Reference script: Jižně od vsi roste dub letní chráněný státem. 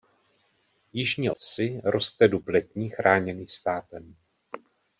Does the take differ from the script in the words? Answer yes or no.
yes